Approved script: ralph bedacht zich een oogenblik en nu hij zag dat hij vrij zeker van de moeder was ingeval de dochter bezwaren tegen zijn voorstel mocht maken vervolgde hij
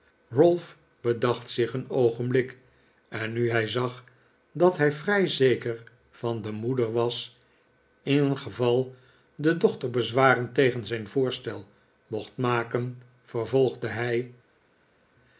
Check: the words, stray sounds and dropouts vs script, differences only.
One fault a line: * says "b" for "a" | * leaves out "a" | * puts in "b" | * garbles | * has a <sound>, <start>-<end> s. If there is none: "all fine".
all fine